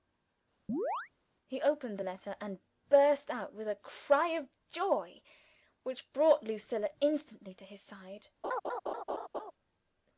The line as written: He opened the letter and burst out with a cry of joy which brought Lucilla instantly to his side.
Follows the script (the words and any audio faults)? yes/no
no